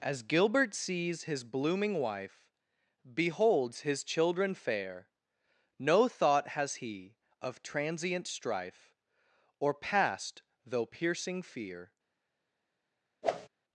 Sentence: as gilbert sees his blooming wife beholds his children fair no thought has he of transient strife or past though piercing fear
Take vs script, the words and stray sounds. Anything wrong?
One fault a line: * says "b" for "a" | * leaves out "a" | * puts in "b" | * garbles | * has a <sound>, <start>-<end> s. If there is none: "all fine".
* has a whoosh, 13.2-13.5 s